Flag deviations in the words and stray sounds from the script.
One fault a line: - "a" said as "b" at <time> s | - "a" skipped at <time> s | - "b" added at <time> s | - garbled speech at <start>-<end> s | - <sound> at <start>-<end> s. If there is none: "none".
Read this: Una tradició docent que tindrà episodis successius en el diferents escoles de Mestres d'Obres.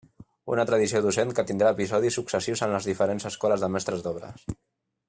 - "el" said as "les" at 2.8 s